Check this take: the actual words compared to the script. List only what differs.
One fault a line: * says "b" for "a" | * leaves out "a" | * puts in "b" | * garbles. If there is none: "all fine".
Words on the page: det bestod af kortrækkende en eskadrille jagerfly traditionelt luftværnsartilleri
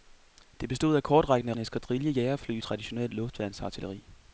all fine